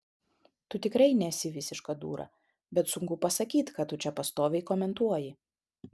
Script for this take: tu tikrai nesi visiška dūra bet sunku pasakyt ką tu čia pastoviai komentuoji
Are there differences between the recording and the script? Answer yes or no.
no